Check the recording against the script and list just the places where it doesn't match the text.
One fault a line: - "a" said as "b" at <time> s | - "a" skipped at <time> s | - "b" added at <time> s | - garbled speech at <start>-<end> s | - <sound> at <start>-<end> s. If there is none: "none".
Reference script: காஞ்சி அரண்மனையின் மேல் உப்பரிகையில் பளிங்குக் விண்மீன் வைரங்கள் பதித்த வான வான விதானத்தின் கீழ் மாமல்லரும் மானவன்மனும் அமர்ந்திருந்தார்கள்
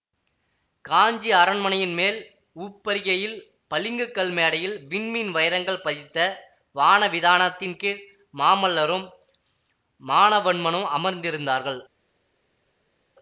- "கல் மேடையில்" added at 4.2 s
- "வான" skipped at 7.1 s